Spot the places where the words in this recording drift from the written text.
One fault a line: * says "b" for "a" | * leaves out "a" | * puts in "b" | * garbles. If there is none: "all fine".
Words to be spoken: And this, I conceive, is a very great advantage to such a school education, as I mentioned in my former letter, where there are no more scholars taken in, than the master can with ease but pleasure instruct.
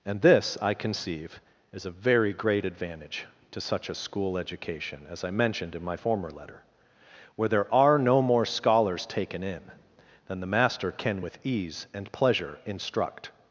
* says "and" for "but"